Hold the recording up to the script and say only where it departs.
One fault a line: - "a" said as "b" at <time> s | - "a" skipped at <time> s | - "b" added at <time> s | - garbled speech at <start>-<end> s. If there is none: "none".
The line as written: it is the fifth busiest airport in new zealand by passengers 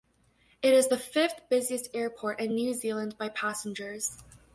none